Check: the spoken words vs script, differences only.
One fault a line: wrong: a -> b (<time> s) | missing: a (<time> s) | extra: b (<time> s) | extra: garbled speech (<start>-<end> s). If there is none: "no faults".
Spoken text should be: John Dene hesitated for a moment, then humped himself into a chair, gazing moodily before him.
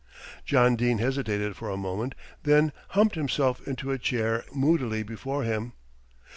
missing: gazing (4.4 s)